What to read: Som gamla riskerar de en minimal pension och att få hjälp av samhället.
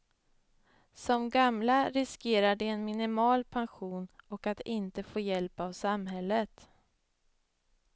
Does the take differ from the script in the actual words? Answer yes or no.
yes